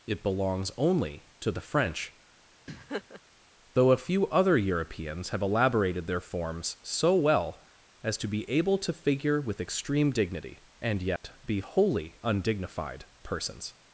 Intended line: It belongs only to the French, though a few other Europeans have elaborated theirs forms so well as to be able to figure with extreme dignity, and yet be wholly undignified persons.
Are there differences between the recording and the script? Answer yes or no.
yes